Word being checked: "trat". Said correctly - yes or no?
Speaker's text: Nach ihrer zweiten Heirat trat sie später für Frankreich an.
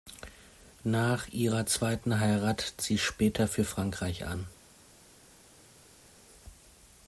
no